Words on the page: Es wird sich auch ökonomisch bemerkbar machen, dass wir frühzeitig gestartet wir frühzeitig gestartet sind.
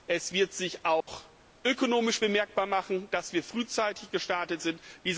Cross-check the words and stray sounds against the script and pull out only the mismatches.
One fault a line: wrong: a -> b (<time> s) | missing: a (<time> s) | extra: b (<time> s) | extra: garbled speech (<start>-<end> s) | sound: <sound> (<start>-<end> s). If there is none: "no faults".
sound: dropout (1.0-1.1 s)
missing: wir frühzeitig gestartet (4.6 s)